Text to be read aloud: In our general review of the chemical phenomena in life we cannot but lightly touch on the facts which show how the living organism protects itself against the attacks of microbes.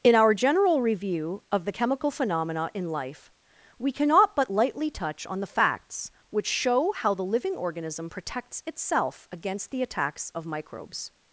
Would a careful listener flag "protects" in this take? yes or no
no